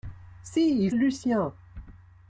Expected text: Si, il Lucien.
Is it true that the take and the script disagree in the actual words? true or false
false